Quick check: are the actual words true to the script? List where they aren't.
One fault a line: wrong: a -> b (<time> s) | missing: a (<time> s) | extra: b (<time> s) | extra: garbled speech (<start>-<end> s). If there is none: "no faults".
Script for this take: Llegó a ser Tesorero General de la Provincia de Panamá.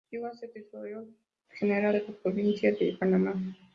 no faults